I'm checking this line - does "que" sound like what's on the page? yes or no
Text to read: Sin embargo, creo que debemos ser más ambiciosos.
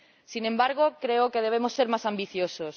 yes